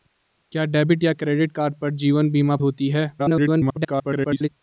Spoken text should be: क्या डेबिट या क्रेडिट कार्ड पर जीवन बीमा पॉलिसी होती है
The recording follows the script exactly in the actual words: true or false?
false